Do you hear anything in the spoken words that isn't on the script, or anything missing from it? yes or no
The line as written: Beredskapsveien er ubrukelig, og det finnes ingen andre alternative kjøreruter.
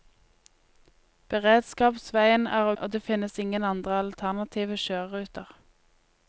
yes